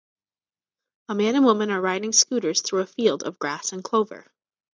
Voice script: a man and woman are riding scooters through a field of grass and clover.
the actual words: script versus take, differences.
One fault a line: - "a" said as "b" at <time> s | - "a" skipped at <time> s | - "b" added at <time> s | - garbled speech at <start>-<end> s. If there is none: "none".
none